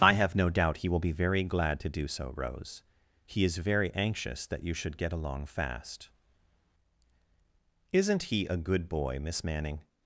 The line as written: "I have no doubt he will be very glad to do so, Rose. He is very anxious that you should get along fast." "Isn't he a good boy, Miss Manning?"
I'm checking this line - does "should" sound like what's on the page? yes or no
yes